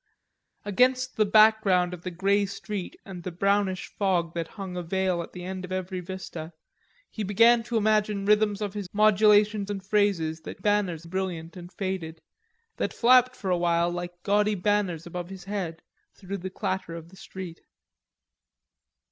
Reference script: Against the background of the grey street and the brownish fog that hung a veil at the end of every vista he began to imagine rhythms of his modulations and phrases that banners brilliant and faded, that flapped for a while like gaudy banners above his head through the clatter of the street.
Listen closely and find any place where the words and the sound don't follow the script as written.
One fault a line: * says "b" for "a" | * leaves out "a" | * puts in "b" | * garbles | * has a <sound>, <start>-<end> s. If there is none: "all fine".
all fine